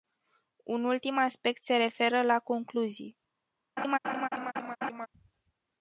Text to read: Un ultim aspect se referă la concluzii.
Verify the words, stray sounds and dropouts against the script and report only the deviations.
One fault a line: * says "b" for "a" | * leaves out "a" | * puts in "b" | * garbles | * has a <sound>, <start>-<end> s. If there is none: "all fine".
* has a laugh, 3.8-5.1 s